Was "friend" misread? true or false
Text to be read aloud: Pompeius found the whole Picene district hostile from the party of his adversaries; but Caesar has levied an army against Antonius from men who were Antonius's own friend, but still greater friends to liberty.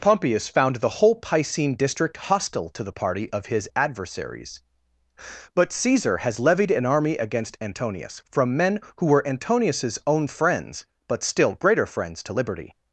true